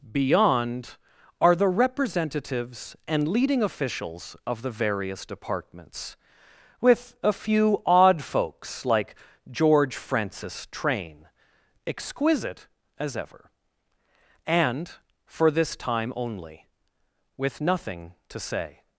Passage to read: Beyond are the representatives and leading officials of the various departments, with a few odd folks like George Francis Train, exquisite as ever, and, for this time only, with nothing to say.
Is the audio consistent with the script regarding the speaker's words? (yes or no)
yes